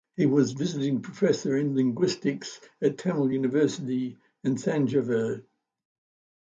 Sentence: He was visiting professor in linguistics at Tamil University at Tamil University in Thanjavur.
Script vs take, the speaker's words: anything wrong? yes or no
yes